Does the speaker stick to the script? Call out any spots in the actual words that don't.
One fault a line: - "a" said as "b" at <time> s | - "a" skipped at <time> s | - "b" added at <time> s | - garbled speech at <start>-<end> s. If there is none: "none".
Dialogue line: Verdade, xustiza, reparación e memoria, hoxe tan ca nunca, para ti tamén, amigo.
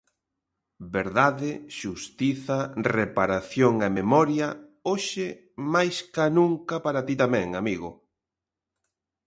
- "tan" said as "máis" at 5.7 s